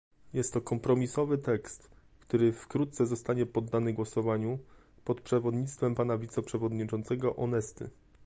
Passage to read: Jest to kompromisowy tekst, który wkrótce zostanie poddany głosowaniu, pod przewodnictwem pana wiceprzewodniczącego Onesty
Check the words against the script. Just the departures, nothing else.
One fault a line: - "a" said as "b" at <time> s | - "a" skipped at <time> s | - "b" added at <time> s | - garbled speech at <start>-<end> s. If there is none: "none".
none